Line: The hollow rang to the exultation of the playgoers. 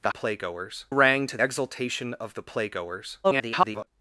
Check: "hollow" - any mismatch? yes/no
yes